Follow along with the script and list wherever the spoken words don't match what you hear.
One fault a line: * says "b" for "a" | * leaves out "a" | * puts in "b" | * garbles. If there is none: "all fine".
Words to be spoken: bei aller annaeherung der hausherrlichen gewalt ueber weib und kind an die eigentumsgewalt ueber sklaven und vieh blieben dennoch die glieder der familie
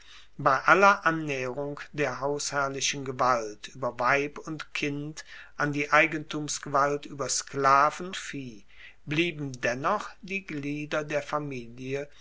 * leaves out "und"